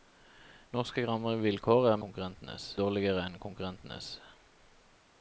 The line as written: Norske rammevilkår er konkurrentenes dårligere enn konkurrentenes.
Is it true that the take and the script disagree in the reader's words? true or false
false